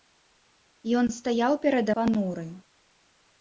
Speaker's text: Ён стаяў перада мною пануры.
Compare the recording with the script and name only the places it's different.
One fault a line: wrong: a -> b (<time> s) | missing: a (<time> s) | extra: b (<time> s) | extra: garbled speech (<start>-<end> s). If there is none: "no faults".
missing: мною (1.9 s)